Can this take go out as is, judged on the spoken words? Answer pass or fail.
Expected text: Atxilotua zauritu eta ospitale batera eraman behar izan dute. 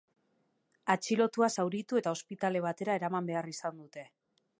pass